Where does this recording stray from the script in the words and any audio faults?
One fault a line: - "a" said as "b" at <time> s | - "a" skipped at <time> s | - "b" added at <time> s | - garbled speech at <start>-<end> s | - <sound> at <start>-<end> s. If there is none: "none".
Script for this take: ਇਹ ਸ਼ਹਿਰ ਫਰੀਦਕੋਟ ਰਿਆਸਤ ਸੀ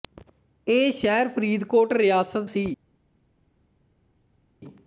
none